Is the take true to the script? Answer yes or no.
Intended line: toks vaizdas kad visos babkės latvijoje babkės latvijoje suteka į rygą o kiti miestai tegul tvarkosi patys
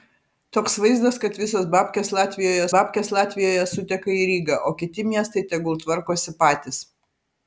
yes